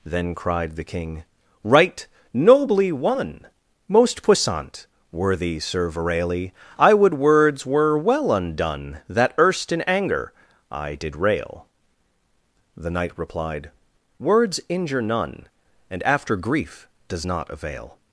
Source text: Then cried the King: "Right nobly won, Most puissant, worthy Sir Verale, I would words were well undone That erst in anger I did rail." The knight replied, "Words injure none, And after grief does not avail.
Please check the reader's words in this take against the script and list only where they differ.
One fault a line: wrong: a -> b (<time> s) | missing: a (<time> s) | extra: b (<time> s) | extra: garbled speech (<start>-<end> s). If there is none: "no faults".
no faults